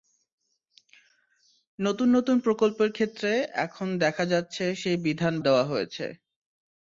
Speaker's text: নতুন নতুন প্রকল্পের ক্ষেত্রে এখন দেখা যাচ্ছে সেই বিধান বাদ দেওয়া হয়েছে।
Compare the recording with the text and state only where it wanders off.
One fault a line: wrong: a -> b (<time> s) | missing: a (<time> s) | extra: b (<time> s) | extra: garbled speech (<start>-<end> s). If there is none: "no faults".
missing: বাদ (5.3 s)